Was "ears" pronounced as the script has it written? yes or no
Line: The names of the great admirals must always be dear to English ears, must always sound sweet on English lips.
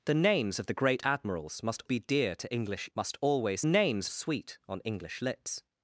no